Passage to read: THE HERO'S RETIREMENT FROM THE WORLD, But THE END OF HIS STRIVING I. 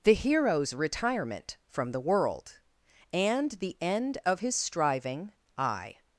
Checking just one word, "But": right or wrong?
wrong